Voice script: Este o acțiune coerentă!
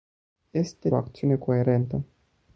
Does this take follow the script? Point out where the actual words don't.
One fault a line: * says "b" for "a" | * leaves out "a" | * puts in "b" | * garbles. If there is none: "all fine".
all fine